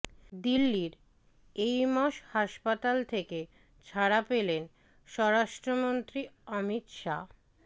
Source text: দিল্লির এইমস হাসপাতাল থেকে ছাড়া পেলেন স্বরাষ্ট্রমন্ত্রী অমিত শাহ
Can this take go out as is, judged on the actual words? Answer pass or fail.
pass